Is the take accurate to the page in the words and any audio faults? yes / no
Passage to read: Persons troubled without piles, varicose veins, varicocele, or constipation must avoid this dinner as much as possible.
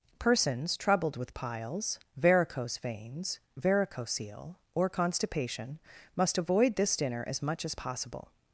no